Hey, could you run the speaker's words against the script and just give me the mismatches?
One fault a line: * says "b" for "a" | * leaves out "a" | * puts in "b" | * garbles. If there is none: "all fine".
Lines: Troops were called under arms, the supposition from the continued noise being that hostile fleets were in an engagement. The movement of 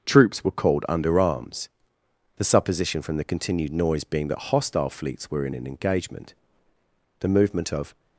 all fine